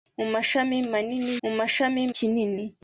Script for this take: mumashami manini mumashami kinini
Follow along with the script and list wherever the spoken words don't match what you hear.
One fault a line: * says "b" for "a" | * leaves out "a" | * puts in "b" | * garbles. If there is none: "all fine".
all fine